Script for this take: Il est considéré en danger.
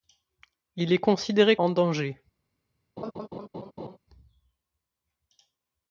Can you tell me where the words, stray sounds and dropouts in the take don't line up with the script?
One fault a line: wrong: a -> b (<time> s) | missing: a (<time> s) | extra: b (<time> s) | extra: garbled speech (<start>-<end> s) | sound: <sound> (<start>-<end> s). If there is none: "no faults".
sound: laugh (3.0-4.0 s)